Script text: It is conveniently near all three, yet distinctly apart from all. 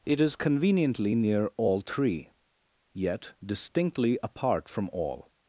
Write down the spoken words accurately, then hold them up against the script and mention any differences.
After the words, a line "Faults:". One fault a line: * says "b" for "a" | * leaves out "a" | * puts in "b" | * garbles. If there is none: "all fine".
It is conveniently near all three, yet distinctly apart from all.
Faults:
all fine